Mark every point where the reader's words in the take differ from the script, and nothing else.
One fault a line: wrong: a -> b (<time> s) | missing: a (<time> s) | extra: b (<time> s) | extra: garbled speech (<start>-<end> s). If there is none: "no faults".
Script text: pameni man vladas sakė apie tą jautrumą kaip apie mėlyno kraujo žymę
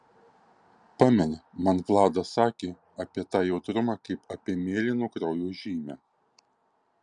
no faults